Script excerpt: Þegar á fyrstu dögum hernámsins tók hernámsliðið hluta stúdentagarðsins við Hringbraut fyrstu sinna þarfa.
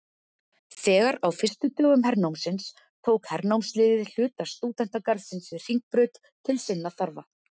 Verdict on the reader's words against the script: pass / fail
fail